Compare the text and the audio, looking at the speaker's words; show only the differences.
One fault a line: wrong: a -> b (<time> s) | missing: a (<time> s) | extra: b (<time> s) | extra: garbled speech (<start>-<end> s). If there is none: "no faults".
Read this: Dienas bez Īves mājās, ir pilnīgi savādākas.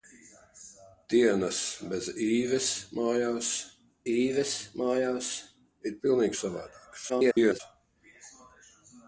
extra: Īves mājās (4.1 s)
extra: garbled speech (7.1-7.6 s)